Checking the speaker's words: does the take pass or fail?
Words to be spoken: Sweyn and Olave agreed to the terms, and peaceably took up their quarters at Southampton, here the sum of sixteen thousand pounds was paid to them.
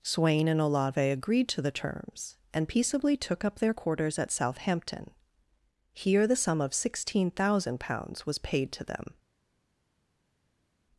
pass